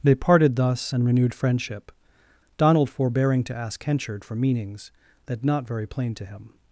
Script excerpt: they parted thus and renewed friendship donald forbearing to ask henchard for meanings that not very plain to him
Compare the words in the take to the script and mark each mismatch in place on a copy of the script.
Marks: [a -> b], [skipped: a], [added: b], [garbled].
they parted thus and renewed friendship donald forbearing to ask henchard for meanings that not very plain to him